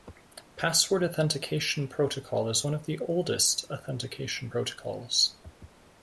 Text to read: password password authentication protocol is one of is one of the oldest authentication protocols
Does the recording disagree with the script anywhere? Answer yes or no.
yes